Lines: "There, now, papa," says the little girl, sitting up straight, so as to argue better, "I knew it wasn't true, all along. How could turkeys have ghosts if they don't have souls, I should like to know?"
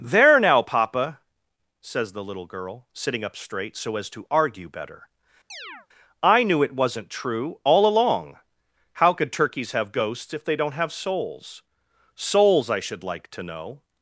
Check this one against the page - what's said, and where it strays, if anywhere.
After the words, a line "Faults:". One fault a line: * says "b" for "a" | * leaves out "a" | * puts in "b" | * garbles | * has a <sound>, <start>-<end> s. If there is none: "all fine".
"There, now, papa," says the little girl, sitting up straight, so as to argue better, "I knew it wasn't true, all along. How could turkeys have ghosts if they don't have souls souls, I should like to know?"
Faults:
* has a chirp, 5.5-5.9 s
* puts in "souls"